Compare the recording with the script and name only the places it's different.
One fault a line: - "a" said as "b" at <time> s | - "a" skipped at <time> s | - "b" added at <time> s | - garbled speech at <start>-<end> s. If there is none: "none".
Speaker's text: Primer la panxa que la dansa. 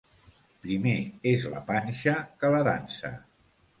- "és" added at 1.3 s